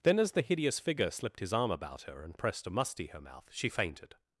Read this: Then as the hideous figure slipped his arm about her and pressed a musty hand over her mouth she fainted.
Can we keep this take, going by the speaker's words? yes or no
no